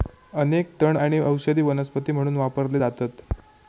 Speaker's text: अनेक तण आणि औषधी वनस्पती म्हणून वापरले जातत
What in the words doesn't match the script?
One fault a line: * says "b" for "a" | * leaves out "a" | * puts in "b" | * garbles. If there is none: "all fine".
all fine